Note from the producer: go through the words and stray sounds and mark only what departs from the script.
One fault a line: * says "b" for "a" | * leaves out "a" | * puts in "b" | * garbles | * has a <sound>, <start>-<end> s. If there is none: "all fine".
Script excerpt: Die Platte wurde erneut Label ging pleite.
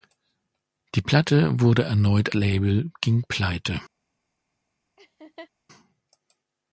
* has a laugh, 5.0-5.5 s